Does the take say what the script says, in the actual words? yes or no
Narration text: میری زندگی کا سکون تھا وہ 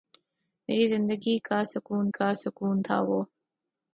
no